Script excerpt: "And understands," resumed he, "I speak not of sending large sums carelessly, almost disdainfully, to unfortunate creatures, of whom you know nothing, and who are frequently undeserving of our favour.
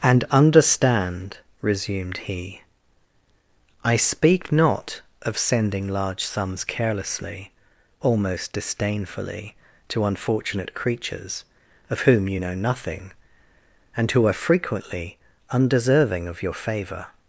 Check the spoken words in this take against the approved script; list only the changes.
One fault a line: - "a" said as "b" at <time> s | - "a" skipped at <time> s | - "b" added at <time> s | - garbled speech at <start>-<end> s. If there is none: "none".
- "understands" said as "understand" at 0.3 s
- "our" said as "your" at 16.4 s